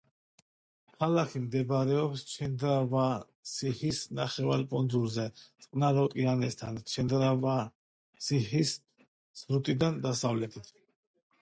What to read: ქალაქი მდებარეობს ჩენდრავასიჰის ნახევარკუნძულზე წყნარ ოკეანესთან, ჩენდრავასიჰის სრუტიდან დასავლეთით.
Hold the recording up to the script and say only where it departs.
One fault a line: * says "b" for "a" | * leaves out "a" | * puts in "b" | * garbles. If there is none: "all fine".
all fine